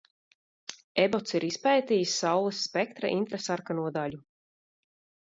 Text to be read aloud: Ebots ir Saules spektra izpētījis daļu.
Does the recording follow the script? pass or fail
fail